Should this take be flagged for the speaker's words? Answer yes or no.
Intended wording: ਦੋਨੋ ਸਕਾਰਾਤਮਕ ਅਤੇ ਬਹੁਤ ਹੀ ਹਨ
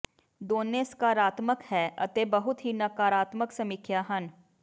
yes